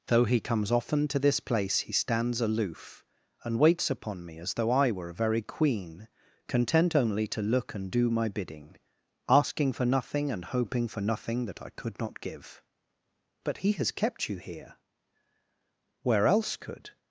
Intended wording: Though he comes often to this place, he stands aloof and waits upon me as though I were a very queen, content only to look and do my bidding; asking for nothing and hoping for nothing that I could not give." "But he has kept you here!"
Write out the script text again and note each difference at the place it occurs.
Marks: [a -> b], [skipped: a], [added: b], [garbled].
Though he comes often to this place, he stands aloof and waits upon me as though I were a very queen, content only to look and do my bidding; asking for nothing and hoping for nothing that I could not give." "But he has kept you here!" [added: Where else could]